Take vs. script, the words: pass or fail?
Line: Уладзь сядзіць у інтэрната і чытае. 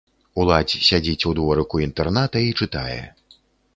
fail